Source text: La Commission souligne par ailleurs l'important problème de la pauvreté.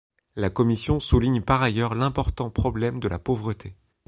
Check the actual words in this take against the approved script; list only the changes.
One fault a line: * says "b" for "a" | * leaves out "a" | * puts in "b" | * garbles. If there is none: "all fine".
all fine